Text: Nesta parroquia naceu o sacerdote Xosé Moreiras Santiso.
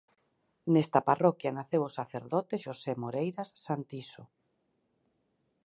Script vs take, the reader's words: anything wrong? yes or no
no